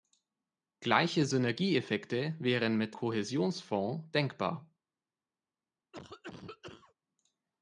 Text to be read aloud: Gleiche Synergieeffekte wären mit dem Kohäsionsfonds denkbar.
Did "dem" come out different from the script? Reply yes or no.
yes